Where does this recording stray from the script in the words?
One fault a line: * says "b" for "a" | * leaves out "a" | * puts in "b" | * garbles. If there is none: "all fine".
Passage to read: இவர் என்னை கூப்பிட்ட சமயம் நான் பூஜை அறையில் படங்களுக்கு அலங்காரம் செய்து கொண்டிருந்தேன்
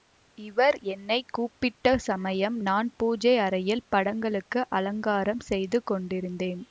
all fine